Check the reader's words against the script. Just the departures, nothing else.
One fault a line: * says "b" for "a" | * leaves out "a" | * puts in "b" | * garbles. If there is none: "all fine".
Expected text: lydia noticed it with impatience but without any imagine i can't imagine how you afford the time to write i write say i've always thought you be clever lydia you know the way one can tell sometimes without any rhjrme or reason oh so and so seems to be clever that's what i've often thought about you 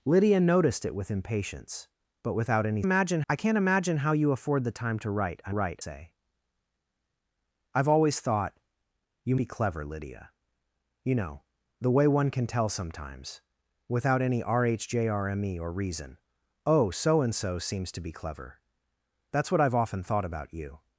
all fine